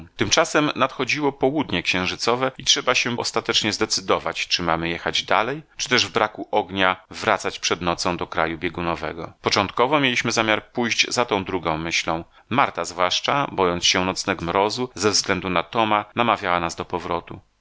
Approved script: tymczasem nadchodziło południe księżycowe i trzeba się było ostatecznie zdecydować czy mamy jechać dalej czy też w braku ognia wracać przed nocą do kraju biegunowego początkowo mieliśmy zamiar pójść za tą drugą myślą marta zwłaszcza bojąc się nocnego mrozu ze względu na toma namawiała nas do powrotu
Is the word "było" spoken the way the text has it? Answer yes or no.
no